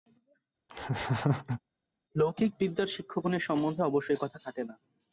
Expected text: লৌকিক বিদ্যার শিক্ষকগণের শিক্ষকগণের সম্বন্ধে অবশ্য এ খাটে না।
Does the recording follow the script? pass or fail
fail